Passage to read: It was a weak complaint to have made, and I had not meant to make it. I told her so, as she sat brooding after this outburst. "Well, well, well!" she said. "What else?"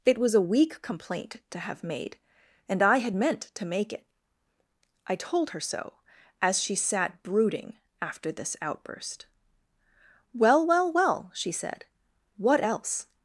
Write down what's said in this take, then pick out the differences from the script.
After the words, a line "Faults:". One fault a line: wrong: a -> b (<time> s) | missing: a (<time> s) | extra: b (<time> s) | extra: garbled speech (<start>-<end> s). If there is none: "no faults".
It was a weak complaint to have made, and I had meant to make it. I told her so, as she sat brooding after this outburst. "Well, well, well!" she said. "What else?"
Faults:
missing: not (3.1 s)